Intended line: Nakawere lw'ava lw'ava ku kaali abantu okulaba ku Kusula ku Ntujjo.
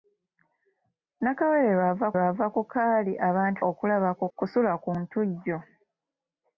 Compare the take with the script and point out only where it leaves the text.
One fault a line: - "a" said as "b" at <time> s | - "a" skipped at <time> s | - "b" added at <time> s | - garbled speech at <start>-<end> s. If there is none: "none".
none